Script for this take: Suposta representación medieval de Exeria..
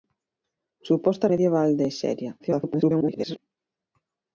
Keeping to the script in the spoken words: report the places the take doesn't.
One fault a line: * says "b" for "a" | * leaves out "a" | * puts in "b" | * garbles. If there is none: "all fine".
* leaves out "representación"
* garbles